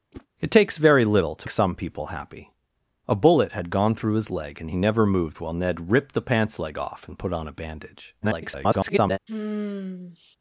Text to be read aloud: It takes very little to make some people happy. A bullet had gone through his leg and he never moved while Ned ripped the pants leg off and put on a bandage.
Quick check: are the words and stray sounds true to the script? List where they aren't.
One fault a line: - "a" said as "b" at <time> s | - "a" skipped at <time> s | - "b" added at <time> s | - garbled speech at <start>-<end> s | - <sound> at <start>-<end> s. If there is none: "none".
- whoosh at 0.1-0.3 s
- "make" skipped at 1.5 s
- garbled speech at 8.2-9.2 s
- sigh at 9.3-10.4 s